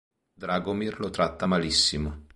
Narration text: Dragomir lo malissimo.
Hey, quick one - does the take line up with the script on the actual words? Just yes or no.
no